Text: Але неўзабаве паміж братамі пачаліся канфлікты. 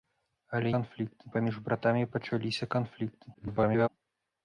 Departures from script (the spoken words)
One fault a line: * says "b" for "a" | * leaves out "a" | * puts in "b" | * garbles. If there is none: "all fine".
* says "канфлікты" for "неўзабаве"
* garbles